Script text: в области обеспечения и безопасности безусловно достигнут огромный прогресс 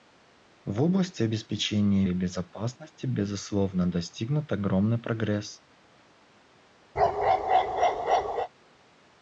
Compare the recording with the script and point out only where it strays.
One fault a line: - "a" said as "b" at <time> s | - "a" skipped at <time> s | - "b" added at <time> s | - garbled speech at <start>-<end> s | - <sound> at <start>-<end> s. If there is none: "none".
- bark at 7.0-8.5 s